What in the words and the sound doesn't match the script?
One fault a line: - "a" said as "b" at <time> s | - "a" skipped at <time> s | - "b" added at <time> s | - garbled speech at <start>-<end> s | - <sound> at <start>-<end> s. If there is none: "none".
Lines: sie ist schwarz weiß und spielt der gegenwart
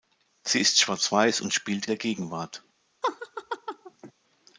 - laugh at 3.0-4.1 s